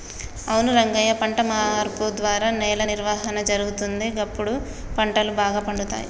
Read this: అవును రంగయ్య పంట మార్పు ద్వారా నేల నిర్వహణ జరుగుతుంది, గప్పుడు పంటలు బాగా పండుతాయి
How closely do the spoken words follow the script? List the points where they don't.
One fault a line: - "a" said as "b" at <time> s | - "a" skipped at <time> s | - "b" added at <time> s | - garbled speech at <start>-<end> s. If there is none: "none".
none